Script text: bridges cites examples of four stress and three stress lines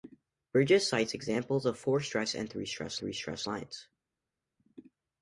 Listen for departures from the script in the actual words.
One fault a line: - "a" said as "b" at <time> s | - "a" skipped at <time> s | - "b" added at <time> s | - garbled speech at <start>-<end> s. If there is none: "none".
- "three stress" added at 3.0 s